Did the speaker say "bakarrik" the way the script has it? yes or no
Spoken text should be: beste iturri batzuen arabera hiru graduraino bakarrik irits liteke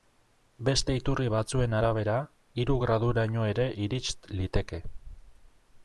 no